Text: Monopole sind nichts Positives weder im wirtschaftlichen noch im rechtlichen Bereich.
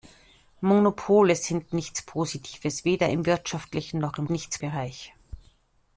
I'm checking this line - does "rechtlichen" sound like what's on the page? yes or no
no